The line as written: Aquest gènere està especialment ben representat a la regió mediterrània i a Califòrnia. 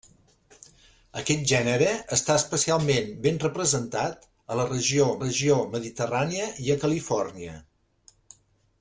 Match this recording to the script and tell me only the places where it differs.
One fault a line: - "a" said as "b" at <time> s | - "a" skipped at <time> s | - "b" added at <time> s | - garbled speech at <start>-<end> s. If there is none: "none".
- "regió" added at 5.2 s